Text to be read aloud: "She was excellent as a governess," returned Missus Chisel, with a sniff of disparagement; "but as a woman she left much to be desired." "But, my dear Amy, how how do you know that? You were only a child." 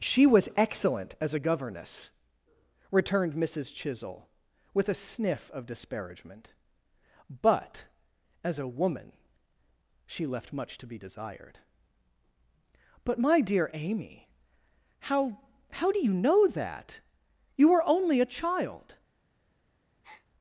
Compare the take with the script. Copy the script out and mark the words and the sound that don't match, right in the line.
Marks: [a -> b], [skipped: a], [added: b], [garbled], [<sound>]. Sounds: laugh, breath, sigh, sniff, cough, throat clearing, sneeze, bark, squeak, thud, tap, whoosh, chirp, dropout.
"She was excellent as a governess," returned Missus Chisel, with a sniff of disparagement; "but as a woman she left much to be desired." "But, my dear Amy, how how do you know that? You were only a child." [breath]